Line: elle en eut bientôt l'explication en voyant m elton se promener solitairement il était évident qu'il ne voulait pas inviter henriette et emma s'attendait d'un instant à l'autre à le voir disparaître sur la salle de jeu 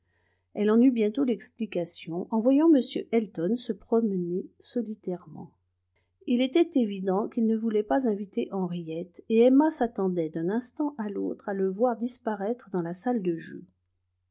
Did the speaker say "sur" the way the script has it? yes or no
no